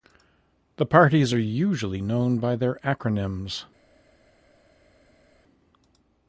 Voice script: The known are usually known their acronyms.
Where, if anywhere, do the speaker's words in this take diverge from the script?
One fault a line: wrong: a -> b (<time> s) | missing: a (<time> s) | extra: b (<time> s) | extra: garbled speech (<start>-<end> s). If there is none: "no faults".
wrong: known -> parties (0.9 s)
extra: by (2.4 s)